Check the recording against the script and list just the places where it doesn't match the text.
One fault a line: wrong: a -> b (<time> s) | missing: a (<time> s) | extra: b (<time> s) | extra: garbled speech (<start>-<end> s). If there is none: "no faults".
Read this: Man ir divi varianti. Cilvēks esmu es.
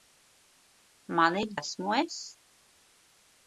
missing: divi varianti Cilvēks (1.5 s)